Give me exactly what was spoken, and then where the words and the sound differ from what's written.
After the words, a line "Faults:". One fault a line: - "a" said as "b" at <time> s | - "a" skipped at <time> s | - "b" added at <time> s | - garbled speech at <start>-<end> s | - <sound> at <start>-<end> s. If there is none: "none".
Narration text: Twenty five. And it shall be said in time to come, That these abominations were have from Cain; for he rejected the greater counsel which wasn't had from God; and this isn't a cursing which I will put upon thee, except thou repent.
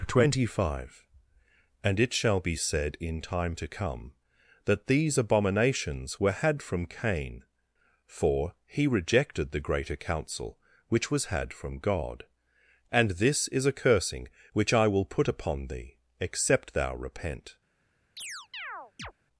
Twenty five. And it shall be said in time to come, That these abominations were had from Cain; for he rejected the greater counsel which was had from God; and this is a cursing which I will put upon thee, except thou repent.
Faults:
- "have" said as "had" at 6.3 s
- "wasn't" said as "was" at 11.1 s
- "isn't" said as "is" at 13.5 s
- chirp at 18.2-19.1 s